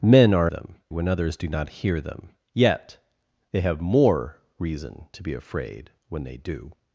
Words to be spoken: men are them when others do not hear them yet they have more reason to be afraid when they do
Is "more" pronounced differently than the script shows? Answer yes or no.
no